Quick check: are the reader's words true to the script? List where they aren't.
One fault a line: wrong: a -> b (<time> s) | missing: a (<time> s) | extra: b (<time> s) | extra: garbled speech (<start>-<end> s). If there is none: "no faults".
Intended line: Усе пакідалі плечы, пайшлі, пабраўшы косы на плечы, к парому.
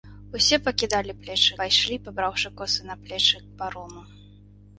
no faults